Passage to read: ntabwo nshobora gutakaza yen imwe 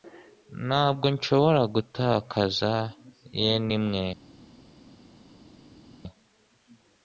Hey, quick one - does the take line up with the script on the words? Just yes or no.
yes